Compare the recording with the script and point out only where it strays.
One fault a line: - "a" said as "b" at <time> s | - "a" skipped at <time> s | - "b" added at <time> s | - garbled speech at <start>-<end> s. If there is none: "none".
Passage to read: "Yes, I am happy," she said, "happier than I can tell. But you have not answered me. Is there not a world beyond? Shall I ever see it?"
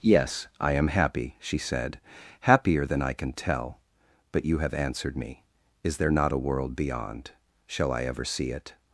- "not" skipped at 4.7 s